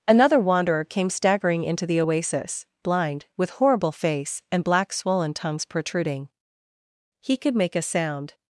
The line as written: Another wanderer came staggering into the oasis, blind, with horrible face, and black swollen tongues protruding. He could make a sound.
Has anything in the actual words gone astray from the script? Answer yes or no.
no